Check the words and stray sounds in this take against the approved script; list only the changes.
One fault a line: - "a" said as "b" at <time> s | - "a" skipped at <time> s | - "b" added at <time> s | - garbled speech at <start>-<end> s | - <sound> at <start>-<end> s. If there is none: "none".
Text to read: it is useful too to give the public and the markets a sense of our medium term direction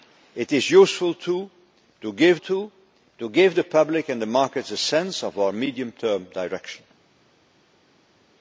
- "too to give" added at 2.4 s